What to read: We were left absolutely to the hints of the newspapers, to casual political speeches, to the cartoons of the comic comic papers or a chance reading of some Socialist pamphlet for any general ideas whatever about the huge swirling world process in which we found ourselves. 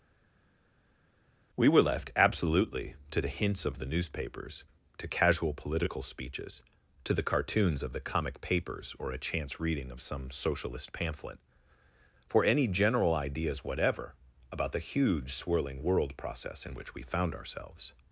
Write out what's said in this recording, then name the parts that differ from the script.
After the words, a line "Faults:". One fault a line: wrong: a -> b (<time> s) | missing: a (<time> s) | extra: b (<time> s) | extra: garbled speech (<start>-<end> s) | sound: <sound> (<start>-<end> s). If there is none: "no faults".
We were left absolutely to the hints of the newspapers, to casual political speeches, to the cartoons of the comic papers or a chance reading of some Socialist pamphlet for any general ideas whatever about the huge swirling world process in which we found ourselves.
Faults:
missing: comic (8.4 s)